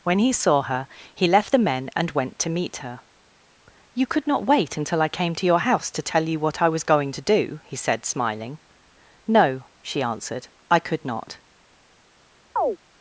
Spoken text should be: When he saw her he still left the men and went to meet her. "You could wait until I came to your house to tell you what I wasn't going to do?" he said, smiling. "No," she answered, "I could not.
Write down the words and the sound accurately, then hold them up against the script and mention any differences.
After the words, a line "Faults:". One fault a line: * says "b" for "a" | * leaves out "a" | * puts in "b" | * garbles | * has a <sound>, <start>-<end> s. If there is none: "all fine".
When he saw her he left the men and went to meet her. "You could not wait until I came to your house to tell you what I was going to do?" he said, smiling. "No," she answered, "I could not.
Faults:
* leaves out "still"
* puts in "not"
* says "was" for "wasn't"
* has a chirp, 12.6-12.8 s